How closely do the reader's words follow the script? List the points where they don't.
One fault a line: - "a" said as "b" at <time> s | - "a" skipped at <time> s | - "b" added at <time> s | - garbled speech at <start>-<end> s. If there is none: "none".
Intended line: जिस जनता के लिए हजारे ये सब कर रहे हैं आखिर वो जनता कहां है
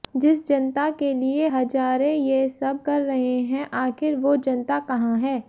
none